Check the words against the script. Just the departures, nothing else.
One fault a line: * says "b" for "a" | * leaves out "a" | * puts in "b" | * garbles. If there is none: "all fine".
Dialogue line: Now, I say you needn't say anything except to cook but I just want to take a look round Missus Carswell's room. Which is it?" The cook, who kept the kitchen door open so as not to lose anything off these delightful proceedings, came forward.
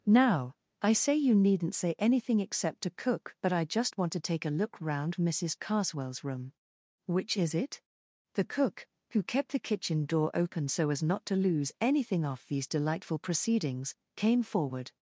all fine